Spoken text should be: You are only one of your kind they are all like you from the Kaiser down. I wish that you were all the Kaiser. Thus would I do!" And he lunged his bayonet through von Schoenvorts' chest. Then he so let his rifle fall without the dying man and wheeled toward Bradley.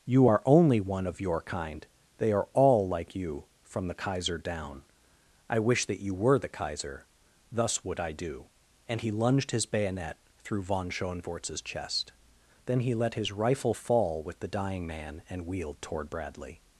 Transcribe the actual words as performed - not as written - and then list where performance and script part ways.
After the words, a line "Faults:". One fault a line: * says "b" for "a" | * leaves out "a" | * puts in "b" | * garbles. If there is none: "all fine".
You are only one of your kind they are all like you from the Kaiser down. I wish that you were the Kaiser. Thus would I do!" And he lunged his bayonet through von Schoenvorts' chest. Then he let his rifle fall with the dying man and wheeled toward Bradley.
Faults:
* leaves out "all"
* leaves out "so"
* says "with" for "without"